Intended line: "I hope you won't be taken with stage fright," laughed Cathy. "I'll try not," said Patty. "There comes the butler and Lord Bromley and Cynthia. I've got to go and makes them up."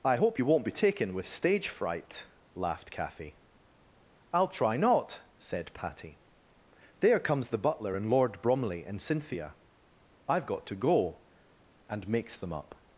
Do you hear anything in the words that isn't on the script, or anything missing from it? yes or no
no